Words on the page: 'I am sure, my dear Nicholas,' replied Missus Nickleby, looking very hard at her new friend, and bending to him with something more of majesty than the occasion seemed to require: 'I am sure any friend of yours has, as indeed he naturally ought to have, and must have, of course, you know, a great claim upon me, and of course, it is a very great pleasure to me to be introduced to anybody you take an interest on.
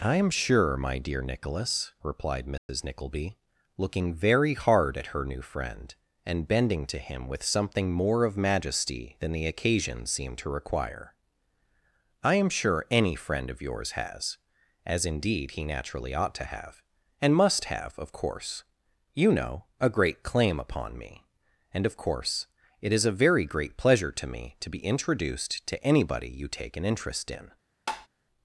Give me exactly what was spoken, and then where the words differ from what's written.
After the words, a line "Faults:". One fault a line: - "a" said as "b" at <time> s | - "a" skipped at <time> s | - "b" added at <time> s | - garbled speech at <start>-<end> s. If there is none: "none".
'I am sure, my dear Nicholas,' replied Missus Nickleby, looking very hard at her new friend, and bending to him with something more of majesty than the occasion seemed to require: 'I am sure any friend of yours has, as indeed he naturally ought to have, and must have, of course, you know, a great claim upon me, and of course, it is a very great pleasure to me to be introduced to anybody you take an interest in.
Faults:
- "on" said as "in" at 27.3 s